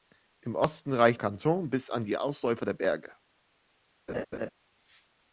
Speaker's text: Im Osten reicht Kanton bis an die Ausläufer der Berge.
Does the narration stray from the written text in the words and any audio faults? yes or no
yes